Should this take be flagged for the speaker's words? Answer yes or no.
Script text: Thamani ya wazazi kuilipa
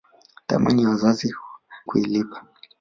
no